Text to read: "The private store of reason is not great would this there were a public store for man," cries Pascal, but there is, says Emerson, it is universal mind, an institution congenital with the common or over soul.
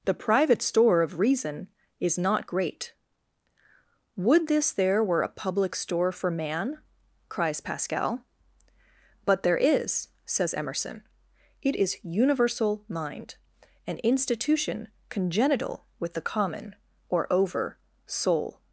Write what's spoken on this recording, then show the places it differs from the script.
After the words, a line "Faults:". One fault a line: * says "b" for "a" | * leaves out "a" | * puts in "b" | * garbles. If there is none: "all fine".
"The private store of reason is not great would this there were a public store for man," cries Pascal, but there is, says Emerson, it is universal mind, an institution congenital with the common or over soul.
Faults:
all fine